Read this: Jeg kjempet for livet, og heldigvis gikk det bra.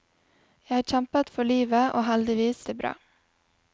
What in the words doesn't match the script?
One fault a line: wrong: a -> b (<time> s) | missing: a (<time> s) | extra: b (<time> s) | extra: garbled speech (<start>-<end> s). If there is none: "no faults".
missing: gikk (2.6 s)